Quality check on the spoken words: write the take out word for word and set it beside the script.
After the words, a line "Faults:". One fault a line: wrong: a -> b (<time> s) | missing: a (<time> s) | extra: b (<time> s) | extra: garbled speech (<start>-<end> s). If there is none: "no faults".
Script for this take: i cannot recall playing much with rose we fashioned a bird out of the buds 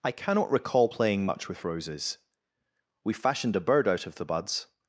i cannot recall playing much with roses we fashioned a bird out of the buds
Faults:
wrong: rose -> roses (1.6 s)